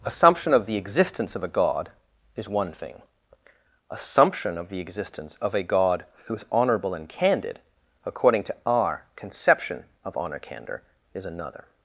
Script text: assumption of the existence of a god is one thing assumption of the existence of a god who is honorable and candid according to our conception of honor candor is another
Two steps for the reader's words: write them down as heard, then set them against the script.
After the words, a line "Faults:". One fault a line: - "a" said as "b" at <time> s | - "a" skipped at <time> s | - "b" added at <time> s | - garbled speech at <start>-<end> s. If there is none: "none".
assumption of the existence of a god is one thing assumption of the existence of a god who is honorable and candid according to our conception of honor candor is another
Faults:
none